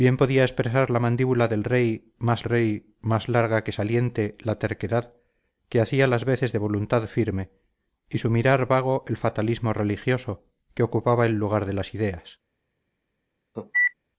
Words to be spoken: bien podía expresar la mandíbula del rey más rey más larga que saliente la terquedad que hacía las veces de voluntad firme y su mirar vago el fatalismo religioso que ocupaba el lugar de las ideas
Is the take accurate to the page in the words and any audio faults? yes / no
no